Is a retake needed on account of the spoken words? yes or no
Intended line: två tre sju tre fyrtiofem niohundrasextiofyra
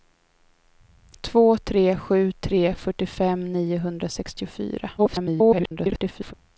yes